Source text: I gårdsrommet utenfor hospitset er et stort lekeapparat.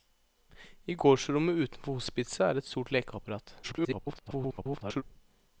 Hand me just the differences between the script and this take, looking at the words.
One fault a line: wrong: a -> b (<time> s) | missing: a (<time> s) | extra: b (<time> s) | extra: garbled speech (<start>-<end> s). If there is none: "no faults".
extra: garbled speech (3.6-5.0 s)